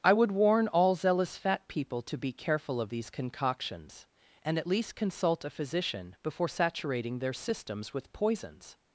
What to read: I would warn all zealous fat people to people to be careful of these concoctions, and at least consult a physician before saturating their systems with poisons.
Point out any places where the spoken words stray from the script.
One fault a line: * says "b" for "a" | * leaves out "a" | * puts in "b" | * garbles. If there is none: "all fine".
* leaves out "people to"